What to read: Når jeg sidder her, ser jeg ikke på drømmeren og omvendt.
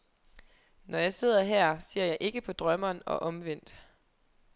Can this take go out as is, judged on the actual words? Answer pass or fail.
pass